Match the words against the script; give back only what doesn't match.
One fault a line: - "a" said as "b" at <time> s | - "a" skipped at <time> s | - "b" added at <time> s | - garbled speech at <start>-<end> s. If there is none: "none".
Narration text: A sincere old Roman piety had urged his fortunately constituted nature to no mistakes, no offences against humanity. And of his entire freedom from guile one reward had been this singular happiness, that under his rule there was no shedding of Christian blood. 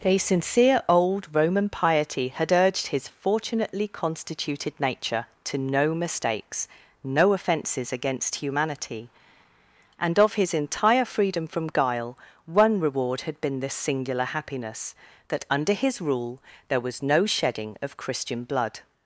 none